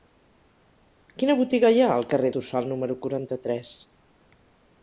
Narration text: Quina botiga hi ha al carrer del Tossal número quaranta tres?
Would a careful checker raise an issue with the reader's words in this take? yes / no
yes